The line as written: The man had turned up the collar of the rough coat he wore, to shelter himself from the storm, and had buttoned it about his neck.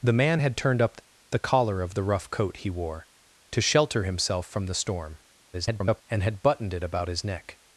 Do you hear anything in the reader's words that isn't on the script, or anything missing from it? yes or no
yes